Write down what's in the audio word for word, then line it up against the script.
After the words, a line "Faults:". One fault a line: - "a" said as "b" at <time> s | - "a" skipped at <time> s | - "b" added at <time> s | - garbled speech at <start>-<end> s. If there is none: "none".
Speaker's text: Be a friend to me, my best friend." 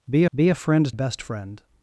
Be be a friend best friend."
Faults:
- "be" added at 0.3 s
- "to me my" skipped at 0.9 s